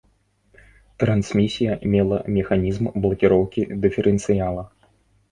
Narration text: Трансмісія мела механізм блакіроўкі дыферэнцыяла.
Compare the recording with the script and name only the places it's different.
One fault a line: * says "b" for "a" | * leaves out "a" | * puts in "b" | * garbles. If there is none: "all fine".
all fine